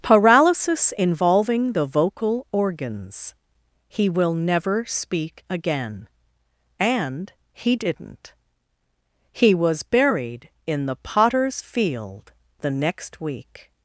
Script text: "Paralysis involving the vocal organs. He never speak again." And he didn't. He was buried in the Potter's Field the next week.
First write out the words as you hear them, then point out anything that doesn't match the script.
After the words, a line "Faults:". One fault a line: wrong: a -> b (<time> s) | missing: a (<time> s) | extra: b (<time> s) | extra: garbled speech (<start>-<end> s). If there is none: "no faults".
"Paralysis involving the vocal organs. He will never speak again." And he didn't. He was buried in the Potter's Field the next week.
Faults:
extra: will (4.1 s)